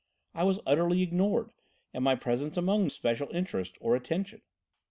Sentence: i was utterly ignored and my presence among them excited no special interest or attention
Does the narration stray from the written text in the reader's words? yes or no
yes